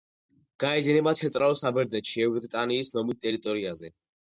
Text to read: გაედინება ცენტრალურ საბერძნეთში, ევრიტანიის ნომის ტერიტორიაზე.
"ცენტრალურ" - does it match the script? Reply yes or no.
yes